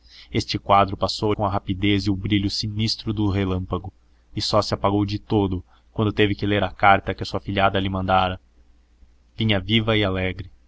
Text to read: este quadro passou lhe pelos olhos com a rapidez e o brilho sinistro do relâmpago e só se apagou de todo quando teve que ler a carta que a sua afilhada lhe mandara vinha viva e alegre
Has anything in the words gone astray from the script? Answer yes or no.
yes